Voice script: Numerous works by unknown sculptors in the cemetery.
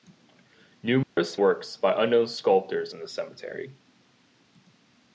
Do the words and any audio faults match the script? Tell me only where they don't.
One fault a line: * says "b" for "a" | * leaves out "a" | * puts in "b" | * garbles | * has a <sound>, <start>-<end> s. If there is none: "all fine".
* has a dropout, 1.0-1.2 s